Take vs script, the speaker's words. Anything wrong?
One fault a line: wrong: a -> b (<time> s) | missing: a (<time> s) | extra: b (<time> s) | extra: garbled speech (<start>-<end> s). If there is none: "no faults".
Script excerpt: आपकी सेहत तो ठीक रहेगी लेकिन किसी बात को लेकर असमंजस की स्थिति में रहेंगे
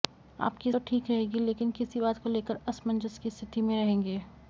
missing: सेहत (0.7 s)